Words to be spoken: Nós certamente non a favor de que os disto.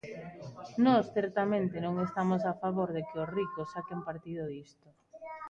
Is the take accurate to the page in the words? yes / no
no